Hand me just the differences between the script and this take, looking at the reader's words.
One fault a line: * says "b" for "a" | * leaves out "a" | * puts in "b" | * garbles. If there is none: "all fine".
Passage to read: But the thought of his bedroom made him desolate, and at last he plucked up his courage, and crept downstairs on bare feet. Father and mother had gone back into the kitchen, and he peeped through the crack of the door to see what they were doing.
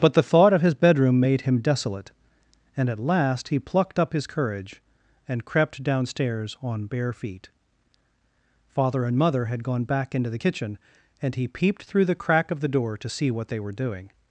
all fine